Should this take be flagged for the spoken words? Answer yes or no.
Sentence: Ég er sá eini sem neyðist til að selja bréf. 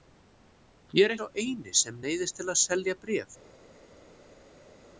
no